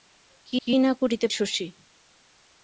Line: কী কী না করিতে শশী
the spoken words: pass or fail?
pass